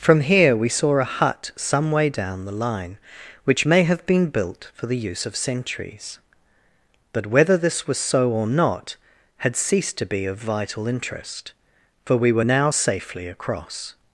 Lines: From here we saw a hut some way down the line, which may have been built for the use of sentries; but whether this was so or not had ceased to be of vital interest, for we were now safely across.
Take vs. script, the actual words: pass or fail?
pass